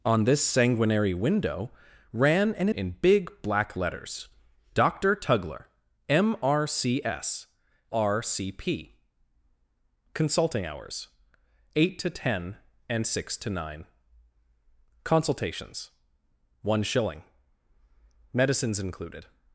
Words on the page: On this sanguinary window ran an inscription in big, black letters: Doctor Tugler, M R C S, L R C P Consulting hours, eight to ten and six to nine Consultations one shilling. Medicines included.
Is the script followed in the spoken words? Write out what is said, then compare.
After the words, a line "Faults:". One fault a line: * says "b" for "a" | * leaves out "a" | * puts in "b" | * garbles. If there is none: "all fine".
On this sanguinary window ran an in big, black letters: Doctor Tugler, M R C S, R C P Consulting hours, eight to ten and six to nine Consultations one shilling. Medicines included.
Faults:
* leaves out "inscription"
* leaves out "L"